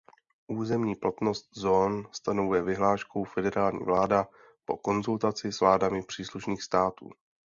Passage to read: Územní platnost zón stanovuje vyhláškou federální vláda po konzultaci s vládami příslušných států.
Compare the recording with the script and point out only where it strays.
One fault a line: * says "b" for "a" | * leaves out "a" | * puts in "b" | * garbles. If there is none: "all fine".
all fine